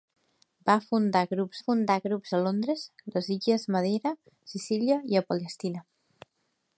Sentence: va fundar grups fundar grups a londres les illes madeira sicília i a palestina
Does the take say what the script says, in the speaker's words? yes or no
yes